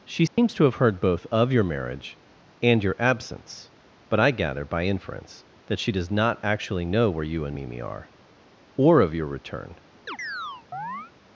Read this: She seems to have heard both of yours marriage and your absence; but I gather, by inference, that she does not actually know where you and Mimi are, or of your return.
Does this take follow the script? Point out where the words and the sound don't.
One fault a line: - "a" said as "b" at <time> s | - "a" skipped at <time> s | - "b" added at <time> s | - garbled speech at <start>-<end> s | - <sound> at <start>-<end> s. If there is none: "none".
- dropout at 0.3-0.4 s
- "yours" said as "your" at 1.5 s
- chirp at 10.1-11.1 s